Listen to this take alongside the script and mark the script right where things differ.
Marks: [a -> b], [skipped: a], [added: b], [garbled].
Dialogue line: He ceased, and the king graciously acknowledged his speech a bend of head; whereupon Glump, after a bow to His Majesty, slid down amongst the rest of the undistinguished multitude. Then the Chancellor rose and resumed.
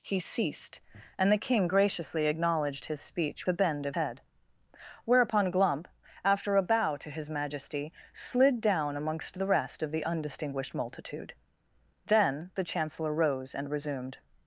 He ceased, and the king graciously acknowledged his speech a bend of head; whereupon Glump, after a bow to His Majesty, slid down amongst the rest of the undistinguished multitude. Then the Chancellor rose and resumed.